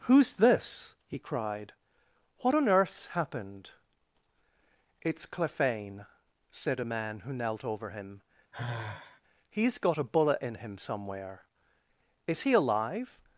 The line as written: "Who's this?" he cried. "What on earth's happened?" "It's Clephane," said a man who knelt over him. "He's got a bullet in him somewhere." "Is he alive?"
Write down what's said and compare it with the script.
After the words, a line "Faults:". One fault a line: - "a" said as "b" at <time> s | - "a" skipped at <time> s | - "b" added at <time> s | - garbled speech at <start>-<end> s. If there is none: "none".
"Who's this?" he cried. "What on earth's happened?" "It's Clephane," said a man who knelt over him. "He's got a bullet in him somewhere." "Is he alive?"
Faults:
none